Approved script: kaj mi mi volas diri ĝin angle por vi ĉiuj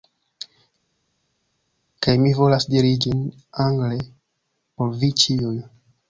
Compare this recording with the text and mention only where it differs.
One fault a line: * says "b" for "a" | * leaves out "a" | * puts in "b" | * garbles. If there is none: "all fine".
* leaves out "mi"